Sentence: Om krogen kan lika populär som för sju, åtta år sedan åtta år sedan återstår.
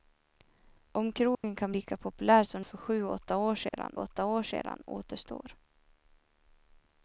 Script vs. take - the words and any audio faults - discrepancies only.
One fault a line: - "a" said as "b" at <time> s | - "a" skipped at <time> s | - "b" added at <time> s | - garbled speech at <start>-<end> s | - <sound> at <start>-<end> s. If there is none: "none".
- dropout at 1.3-1.4 s
- dropout at 3.7-3.7 s